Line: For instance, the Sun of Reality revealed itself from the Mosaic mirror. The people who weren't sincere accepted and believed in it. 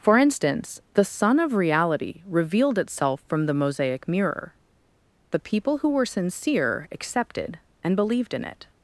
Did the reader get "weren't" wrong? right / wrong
wrong